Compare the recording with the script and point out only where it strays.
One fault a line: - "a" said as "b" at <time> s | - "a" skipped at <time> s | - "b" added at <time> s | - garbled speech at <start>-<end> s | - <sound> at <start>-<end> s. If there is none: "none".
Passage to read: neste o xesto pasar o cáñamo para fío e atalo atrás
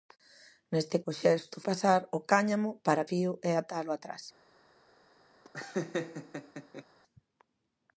- laugh at 5.4-6.8 s